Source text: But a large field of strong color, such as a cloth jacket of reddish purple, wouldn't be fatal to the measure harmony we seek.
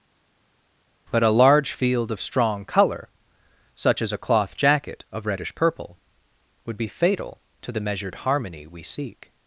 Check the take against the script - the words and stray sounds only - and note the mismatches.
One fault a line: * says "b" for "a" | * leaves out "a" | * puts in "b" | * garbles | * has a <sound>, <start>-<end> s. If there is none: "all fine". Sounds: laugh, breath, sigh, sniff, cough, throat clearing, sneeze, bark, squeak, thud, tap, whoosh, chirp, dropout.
* says "would" for "wouldn't"
* says "measured" for "measure"